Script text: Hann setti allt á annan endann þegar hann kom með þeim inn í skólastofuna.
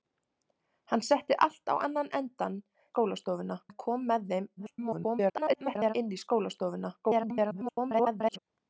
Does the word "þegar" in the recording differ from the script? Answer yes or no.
yes